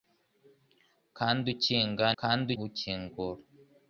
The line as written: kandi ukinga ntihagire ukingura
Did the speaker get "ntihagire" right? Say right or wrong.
wrong